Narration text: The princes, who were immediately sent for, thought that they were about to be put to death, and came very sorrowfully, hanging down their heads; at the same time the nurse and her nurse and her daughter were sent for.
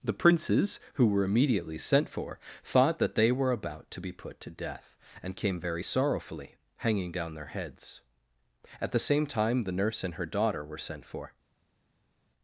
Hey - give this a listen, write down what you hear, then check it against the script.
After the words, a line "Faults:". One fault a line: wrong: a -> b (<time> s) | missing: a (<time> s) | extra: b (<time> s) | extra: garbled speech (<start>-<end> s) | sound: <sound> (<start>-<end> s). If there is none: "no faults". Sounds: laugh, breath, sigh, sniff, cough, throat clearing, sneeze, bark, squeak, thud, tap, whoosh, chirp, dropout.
The princes, who were immediately sent for, thought that they were about to be put to death, and came very sorrowfully, hanging down their heads; at the same time the nurse and her daughter were sent for.
Faults:
missing: nurse and her (10.3 s)